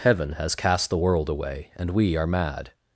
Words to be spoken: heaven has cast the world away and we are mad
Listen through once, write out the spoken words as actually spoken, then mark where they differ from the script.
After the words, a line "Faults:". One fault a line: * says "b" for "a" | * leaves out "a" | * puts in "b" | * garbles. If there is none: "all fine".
heaven has cast the world away and we are mad
Faults:
all fine